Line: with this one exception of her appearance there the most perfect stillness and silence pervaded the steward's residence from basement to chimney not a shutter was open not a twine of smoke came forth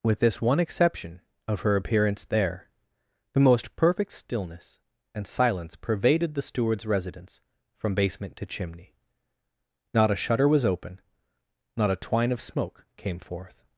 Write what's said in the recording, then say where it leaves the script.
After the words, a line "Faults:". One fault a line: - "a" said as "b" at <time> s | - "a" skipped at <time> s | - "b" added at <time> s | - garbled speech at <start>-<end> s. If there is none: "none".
with this one exception of her appearance there the most perfect stillness and silence pervaded the steward's residence from basement to chimney not a shutter was open not a twine of smoke came forth
Faults:
none